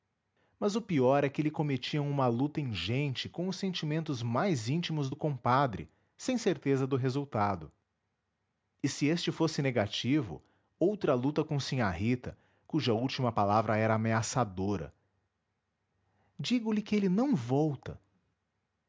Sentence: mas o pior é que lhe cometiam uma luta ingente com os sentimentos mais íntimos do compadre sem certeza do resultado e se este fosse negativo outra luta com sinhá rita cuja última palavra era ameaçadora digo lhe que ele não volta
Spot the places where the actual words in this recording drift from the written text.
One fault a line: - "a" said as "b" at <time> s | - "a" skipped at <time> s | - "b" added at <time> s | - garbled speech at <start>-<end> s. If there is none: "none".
none